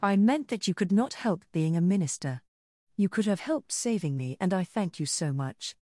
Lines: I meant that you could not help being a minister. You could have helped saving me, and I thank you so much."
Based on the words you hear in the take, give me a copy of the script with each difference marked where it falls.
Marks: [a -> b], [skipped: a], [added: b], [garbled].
I meant that you could not help being a minister. You could have helped saving me, and I thank you so much."